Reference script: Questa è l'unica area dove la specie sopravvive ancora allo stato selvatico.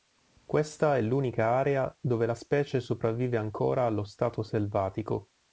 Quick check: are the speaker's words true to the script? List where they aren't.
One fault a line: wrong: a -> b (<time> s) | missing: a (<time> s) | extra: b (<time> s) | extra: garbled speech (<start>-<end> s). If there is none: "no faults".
no faults